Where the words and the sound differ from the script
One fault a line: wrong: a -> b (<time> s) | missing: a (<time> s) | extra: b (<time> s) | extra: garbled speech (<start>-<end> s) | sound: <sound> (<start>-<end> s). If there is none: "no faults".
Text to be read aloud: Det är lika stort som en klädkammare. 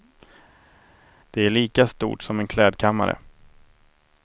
no faults